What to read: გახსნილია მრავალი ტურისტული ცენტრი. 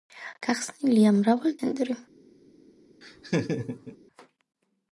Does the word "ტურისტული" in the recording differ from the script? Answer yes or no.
yes